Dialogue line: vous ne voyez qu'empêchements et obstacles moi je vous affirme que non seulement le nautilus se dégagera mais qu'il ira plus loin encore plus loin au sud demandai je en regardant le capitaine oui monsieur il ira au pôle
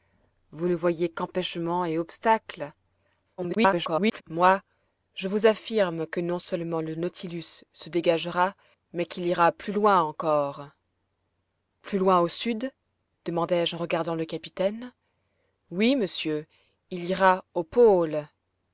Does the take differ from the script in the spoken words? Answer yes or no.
yes